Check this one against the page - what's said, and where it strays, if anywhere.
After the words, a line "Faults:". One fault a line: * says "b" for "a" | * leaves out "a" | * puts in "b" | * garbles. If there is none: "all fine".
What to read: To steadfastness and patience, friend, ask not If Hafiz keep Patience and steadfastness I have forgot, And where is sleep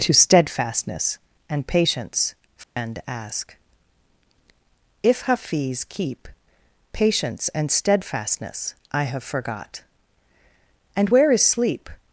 To steadfastness and patience, friend, ask If Hafiz keep Patience and steadfastness I have forgot, And where is sleep
Faults:
* leaves out "not"